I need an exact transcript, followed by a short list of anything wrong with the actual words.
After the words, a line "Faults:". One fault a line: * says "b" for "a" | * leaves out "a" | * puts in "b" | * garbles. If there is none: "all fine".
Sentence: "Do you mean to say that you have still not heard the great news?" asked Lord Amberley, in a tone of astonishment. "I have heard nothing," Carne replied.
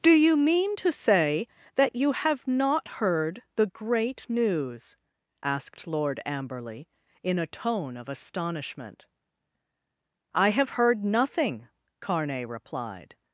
"Do you mean to say that you have not heard the great news?" asked Lord Amberley, in a tone of astonishment. "I have heard nothing," Carne replied.
Faults:
* leaves out "still"